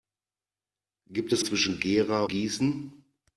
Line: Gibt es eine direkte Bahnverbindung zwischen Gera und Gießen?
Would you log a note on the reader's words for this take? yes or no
yes